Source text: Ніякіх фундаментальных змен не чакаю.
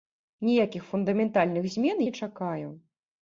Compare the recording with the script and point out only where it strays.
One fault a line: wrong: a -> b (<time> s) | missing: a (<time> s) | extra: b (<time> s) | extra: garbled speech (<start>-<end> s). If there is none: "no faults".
no faults